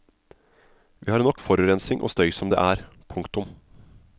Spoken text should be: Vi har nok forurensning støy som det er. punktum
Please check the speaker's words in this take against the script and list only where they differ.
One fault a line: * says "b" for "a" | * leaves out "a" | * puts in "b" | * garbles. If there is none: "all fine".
* puts in "og"